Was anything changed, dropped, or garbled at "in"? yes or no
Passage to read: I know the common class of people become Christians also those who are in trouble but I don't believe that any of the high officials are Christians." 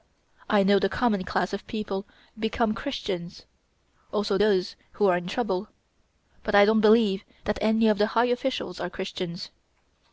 no